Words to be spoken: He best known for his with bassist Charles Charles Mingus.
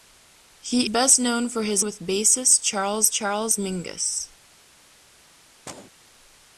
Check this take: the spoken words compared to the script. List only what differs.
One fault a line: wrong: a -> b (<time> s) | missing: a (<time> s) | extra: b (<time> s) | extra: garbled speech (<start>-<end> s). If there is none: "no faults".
no faults